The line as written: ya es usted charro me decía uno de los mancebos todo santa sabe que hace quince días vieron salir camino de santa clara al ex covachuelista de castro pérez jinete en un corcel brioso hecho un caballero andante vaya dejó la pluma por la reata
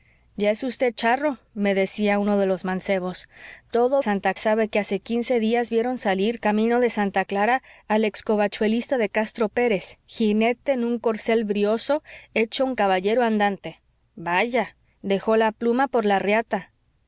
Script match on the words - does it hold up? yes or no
yes